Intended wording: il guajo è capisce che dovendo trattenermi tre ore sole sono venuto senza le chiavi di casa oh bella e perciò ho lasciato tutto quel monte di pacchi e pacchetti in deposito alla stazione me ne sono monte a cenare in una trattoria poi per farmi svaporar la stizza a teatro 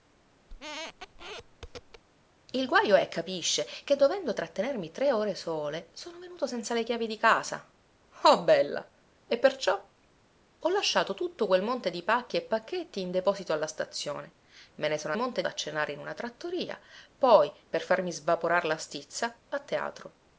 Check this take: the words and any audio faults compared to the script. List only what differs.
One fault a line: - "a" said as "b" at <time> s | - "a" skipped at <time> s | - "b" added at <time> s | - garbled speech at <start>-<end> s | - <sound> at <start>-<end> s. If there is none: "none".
- squeak at 0.5-2.0 s